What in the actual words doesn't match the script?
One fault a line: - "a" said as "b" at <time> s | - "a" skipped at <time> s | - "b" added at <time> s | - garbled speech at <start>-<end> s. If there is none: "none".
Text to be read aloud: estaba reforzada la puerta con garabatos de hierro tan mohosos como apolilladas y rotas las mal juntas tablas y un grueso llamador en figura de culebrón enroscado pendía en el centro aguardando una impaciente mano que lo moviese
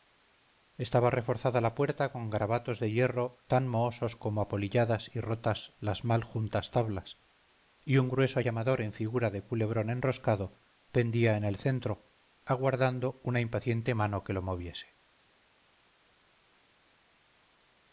none